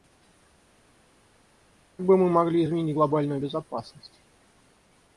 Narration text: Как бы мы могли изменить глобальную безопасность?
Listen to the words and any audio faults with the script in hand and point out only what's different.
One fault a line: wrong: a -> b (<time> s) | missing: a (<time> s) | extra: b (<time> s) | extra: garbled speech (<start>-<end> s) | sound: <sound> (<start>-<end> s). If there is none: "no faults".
no faults